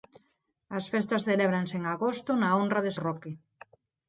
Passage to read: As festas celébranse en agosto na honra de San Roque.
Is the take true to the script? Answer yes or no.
no